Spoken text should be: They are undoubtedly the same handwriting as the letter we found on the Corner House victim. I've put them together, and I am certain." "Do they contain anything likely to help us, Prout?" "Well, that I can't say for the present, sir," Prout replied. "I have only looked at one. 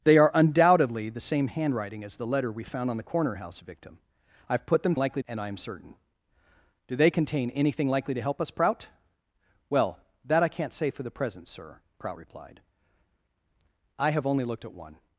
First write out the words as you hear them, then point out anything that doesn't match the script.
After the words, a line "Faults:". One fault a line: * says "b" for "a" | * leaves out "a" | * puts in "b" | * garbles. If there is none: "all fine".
They are undoubtedly the same handwriting as the letter we found on the Corner House victim. I've put them likely, and I am certain." "Do they contain anything likely to help us, Prout?" "Well, that I can't say for the present, sir," Prout replied. "I have only looked at one.
Faults:
* says "likely" for "together"